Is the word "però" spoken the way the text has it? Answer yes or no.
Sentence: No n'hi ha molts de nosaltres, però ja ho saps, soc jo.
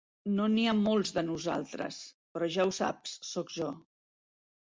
yes